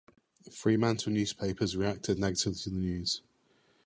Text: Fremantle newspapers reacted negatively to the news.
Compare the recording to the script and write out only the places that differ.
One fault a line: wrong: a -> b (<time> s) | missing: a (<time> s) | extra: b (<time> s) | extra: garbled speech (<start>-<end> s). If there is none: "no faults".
no faults